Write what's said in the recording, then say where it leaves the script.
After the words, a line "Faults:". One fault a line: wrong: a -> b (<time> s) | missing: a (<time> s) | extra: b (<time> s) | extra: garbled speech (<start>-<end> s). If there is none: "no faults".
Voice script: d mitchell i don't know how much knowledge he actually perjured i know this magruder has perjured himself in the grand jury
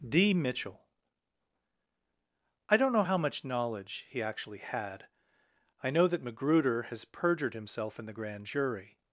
d mitchell i don't know how much knowledge he actually had i know that magruder has perjured himself in the grand jury
Faults:
wrong: perjured -> had (4.6 s)
wrong: this -> that (6.1 s)